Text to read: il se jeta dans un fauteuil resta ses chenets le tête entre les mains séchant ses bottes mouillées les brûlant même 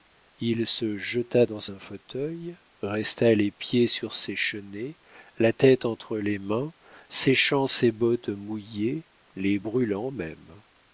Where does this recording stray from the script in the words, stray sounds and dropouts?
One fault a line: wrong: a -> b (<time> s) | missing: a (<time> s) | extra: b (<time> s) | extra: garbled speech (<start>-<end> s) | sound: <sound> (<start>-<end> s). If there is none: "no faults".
extra: les pieds sur (3.3 s)
wrong: le -> la (5.4 s)